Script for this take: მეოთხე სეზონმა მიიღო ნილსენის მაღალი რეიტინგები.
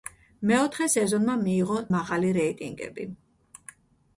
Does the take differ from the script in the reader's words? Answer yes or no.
yes